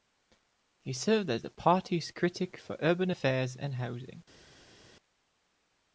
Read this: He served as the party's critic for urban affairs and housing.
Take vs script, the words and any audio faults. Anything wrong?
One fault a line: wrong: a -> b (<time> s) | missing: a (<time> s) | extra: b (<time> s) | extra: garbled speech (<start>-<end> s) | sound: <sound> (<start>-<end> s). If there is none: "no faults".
no faults